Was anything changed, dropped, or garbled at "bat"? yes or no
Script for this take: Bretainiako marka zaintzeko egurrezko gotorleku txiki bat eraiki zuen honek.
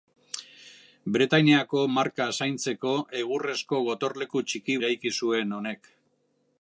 yes